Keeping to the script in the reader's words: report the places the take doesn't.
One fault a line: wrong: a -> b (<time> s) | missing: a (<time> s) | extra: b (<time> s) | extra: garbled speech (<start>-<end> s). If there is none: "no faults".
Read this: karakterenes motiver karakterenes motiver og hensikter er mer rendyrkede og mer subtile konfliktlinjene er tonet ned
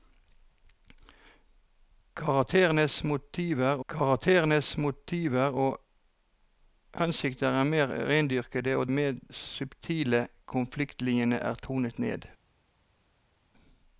no faults